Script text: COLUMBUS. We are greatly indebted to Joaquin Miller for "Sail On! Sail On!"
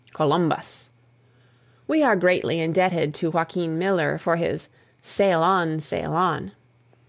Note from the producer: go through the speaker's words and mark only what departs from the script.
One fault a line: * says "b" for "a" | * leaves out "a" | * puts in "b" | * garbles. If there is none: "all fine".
* puts in "his"